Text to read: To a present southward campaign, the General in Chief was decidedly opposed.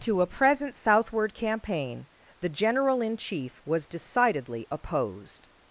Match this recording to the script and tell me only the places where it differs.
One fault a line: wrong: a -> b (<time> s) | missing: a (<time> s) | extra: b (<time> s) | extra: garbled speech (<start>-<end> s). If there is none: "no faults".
no faults